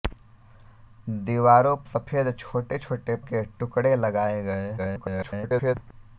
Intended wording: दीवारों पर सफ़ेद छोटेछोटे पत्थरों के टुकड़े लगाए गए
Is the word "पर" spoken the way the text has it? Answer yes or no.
no